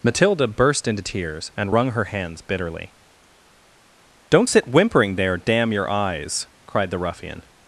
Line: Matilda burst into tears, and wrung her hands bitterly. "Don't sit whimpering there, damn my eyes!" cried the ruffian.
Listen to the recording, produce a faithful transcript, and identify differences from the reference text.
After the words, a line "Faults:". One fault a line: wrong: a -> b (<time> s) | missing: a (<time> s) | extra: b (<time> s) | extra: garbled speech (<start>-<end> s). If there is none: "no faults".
Matilda burst into tears, and wrung her hands bitterly. "Don't sit whimpering there, damn your eyes!" cried the ruffian.
Faults:
wrong: my -> your (5.7 s)